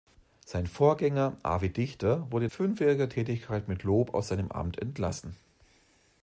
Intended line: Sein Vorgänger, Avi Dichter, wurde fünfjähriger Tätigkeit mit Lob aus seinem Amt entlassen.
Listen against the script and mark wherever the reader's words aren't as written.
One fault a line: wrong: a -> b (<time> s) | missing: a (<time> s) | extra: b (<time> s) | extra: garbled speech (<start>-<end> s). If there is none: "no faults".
no faults